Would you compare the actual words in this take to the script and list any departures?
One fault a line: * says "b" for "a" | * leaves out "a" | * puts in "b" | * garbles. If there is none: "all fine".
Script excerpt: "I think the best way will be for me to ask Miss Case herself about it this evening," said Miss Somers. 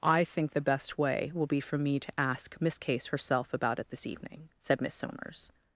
all fine